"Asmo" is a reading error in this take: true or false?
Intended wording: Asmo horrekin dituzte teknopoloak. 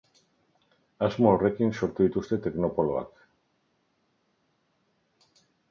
false